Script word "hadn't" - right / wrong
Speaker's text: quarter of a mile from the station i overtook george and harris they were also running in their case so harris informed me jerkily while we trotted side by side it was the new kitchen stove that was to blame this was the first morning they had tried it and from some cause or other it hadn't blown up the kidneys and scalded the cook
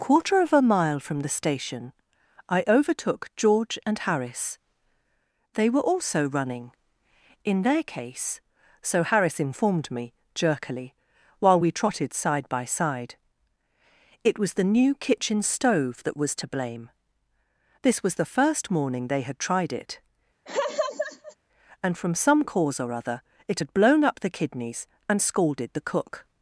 wrong